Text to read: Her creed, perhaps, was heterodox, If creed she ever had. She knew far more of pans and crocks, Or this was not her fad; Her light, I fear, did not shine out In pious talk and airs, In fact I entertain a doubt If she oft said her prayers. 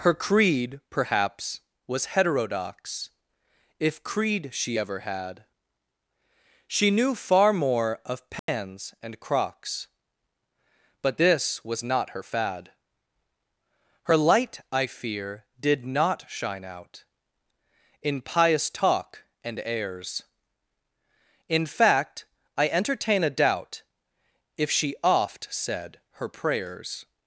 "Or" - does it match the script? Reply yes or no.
no